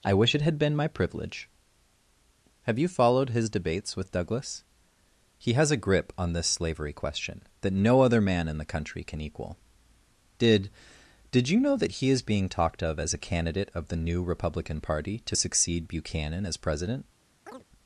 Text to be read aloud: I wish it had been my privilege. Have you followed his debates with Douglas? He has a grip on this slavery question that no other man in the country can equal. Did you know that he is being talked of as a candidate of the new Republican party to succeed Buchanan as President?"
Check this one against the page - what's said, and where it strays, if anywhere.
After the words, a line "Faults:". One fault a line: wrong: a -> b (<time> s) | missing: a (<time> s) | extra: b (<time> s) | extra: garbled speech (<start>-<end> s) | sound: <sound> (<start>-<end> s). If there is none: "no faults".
I wish it had been my privilege. Have you followed his debates with Douglas? He has a grip on this slavery question that no other man in the country can equal. Did Did you know that he is being talked of as a candidate of the new Republican party to succeed Buchanan as President?"
Faults:
extra: Did (11.3 s)
sound: chirp (17.5-17.6 s)